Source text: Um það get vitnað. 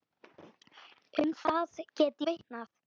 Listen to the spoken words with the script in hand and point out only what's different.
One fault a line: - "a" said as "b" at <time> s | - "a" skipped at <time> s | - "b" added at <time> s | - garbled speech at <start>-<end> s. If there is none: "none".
none